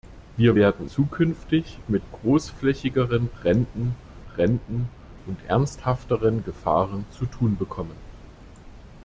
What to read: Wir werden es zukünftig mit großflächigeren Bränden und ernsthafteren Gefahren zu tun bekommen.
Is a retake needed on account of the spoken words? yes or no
yes